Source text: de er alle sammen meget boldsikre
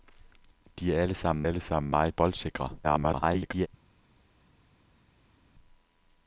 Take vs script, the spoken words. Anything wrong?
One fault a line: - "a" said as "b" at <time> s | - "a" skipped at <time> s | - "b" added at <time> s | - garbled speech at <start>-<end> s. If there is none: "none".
- "alle sammen" added at 1.5 s
- garbled speech at 2.8-3.7 s